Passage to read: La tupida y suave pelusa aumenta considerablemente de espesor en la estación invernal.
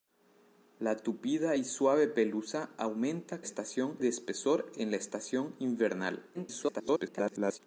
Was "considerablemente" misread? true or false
true